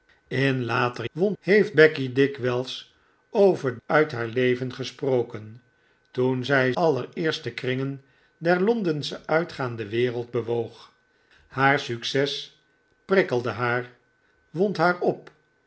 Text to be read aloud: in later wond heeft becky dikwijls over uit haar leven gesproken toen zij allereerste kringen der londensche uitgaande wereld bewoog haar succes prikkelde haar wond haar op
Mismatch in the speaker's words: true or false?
false